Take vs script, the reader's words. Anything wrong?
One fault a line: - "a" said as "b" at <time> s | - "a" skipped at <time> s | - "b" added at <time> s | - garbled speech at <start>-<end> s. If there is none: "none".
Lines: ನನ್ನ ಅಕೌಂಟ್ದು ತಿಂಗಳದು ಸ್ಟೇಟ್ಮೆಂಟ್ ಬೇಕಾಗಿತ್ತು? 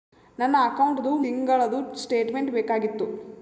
none